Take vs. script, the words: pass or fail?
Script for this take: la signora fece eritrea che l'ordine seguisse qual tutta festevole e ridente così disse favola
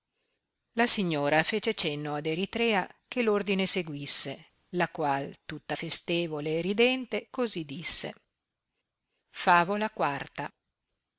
fail